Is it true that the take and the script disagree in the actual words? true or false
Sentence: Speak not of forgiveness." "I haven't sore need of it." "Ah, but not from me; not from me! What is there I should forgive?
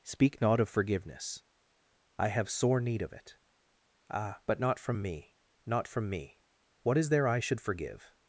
true